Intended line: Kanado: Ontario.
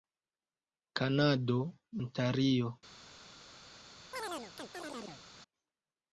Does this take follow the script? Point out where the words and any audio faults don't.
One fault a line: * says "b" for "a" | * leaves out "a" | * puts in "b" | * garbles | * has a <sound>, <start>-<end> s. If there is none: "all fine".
* has a chirp, 4.1-5.2 s